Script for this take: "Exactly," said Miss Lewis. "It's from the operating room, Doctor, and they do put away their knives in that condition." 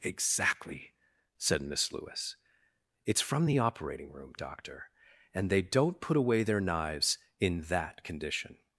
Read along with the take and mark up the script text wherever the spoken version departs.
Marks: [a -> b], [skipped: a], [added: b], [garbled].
"Exactly," said Miss Lewis. "It's from the operating room, Doctor, and they [do -> don't] put away their knives in that condition."